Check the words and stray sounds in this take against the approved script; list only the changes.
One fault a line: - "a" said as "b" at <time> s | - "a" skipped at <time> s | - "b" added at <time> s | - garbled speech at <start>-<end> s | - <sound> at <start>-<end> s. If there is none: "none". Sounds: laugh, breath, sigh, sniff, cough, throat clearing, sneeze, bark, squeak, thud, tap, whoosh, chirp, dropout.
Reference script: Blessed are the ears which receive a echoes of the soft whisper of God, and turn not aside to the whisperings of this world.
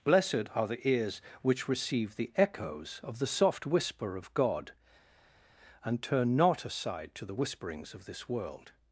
- "a" said as "the" at 2.1 s